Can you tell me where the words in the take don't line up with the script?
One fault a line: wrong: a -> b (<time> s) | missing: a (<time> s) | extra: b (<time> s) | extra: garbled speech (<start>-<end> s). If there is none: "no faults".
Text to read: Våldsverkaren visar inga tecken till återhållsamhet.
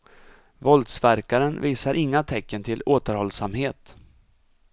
no faults